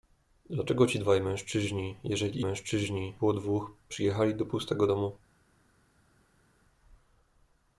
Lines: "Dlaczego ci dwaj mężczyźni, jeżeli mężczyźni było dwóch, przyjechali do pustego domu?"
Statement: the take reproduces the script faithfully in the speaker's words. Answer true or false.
true